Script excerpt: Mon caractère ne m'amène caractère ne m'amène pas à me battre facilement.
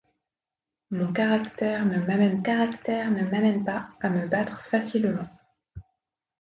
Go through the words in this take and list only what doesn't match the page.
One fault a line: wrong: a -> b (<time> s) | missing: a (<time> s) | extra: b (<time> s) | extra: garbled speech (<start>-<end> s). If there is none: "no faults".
no faults